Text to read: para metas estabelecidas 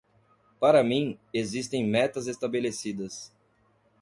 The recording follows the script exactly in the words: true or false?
false